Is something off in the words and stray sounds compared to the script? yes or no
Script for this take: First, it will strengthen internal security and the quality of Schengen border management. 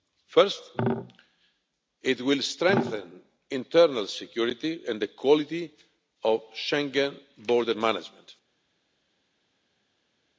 no